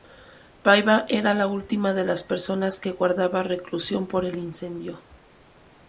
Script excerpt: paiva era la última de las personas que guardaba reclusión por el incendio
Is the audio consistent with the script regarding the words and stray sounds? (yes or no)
yes